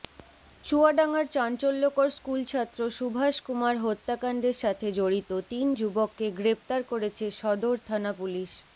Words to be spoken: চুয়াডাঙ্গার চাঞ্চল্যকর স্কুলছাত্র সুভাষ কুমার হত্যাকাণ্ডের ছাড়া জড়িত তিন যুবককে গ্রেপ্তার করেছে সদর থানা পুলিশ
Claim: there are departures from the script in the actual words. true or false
true